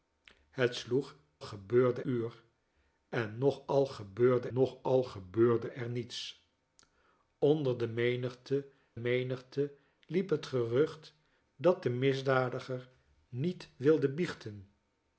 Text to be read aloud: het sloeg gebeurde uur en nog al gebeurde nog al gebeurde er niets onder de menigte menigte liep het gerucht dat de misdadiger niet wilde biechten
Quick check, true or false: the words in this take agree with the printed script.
true